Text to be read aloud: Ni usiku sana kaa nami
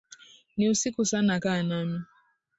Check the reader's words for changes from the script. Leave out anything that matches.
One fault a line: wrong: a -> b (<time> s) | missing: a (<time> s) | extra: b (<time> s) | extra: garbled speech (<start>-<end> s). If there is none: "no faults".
no faults